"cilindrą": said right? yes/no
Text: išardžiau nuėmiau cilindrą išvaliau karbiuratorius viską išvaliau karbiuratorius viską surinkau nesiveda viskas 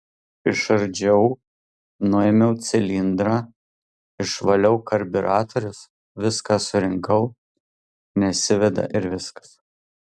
yes